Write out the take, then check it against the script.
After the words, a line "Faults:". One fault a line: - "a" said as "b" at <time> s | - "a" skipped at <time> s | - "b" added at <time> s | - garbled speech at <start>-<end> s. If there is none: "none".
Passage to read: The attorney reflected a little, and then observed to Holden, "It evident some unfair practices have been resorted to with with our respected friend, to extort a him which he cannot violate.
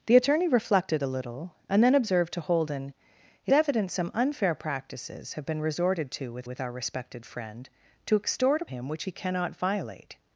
The attorney reflected a little, and then observed to Holden, "It evident some unfair practices have been resorted to with with our respected friend, to extort a him which he cannot violate.
Faults:
none